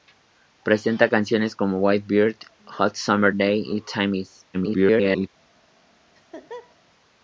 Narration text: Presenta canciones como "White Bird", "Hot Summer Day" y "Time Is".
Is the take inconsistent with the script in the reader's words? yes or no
yes